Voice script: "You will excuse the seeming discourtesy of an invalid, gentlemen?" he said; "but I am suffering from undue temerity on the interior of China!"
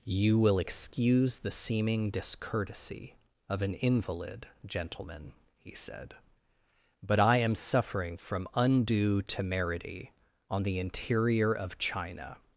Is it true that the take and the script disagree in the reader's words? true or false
false